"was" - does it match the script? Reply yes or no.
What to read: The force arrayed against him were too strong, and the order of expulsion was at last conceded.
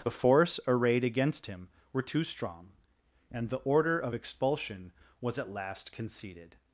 yes